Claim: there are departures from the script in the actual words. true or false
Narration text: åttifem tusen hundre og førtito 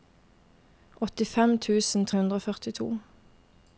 false